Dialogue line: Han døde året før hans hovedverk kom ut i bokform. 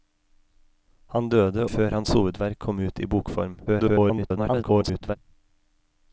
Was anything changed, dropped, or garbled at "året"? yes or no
yes